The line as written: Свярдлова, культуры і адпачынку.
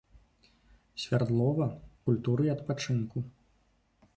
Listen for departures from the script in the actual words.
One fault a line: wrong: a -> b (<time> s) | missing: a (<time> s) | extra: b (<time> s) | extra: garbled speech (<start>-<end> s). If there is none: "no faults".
no faults